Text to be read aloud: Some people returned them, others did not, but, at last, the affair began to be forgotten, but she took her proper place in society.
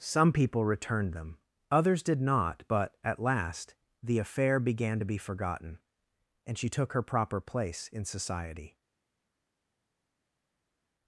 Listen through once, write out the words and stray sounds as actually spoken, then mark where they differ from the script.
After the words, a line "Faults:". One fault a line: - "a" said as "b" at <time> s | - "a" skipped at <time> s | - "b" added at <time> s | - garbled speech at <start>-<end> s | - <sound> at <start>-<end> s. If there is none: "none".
Some people returned them, others did not, but, at last, the affair began to be forgotten, and she took her proper place in society.
Faults:
- "but" said as "and" at 6.4 s